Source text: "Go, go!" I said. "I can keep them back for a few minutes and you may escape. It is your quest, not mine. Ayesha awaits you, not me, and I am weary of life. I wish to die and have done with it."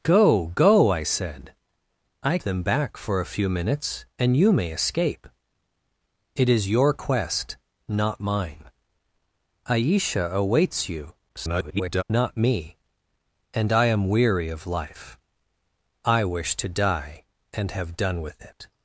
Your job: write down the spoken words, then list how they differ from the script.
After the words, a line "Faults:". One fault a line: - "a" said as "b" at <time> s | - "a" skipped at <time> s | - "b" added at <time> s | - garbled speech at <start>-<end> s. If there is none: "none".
"Go, go!" I said. "I them back for a few minutes and you may escape. It is your quest, not mine. Ayesha awaits you, [garbled] not me, and I am weary of life. I wish to die and have done with it."
Faults:
- "can keep" skipped at 2.4 s
- garbled speech at 11.3-12.0 s